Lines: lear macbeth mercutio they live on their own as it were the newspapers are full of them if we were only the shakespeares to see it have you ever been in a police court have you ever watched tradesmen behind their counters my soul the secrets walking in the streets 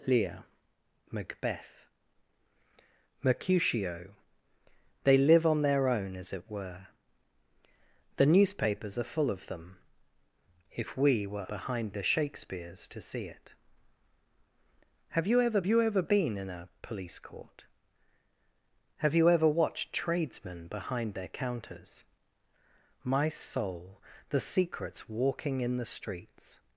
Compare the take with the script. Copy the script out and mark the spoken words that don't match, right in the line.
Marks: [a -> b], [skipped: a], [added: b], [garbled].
lear macbeth mercutio they live on their own as it were the newspapers are full of them if we were [only -> behind] the shakespeares to see it have you ever [added: you ever] been in a police court have you ever watched tradesmen behind their counters my soul the secrets walking in the streets